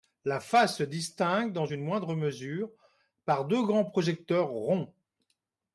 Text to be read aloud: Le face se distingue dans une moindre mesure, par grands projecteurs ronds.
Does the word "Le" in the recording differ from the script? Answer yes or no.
yes